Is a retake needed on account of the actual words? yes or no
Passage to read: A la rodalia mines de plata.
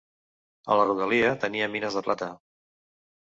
yes